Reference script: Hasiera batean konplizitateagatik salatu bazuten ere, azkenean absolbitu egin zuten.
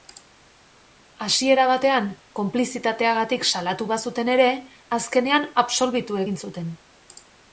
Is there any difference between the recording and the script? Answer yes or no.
no